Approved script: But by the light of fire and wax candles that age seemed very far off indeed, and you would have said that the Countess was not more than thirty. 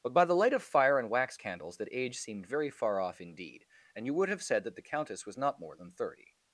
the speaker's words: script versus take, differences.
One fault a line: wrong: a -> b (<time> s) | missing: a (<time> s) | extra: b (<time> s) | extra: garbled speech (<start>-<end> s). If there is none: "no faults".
no faults